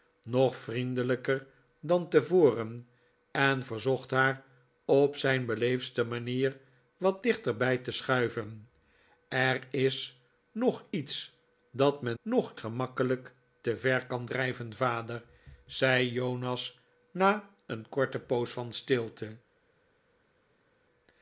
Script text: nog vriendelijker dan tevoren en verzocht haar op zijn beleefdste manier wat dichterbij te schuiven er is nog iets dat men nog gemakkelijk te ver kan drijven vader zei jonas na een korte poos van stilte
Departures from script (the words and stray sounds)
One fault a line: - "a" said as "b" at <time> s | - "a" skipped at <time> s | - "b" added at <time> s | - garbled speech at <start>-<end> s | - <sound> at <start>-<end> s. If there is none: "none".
none